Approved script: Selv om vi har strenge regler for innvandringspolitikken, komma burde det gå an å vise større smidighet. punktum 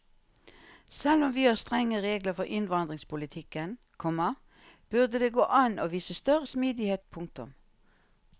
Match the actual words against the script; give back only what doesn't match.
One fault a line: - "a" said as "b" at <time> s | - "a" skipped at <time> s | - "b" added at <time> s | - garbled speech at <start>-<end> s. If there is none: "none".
none